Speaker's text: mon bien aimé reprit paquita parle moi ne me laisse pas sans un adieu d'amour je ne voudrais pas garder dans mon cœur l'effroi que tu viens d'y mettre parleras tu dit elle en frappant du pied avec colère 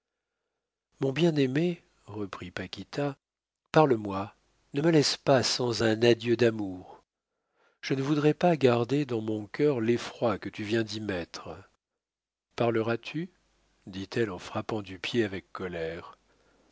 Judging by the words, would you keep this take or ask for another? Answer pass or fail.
pass